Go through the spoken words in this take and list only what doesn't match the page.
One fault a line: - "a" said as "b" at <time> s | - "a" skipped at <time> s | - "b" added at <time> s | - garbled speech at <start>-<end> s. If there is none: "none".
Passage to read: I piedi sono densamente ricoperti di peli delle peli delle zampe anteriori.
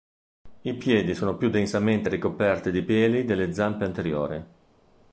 - "più" added at 1.4 s
- "peli delle" skipped at 3.5 s